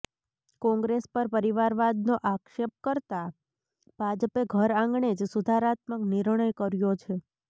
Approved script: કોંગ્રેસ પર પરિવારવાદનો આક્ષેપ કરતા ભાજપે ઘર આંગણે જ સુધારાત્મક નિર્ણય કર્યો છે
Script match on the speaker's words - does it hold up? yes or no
yes